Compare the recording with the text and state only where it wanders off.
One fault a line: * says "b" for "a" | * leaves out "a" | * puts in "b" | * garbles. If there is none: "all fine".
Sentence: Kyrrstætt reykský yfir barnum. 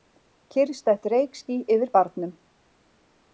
all fine